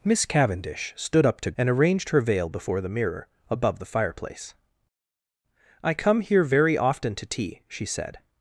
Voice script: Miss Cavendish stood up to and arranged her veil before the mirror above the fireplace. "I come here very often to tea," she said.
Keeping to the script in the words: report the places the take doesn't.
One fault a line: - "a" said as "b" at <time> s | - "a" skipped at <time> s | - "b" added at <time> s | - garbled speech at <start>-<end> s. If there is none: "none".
none